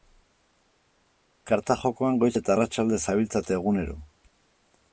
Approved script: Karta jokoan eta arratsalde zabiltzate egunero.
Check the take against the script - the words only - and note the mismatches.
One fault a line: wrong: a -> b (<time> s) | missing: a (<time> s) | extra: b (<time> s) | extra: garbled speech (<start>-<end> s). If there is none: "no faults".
extra: goiz (2.2 s)